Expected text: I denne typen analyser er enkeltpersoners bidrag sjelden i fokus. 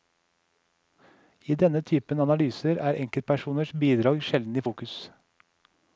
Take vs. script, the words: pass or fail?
pass